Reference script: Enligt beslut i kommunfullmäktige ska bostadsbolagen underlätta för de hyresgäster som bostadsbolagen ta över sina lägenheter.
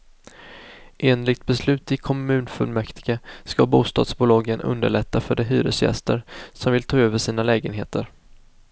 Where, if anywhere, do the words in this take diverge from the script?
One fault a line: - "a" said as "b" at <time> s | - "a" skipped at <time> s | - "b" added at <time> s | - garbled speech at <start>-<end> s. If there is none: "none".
- "bostadsbolagen" said as "vill" at 6.7 s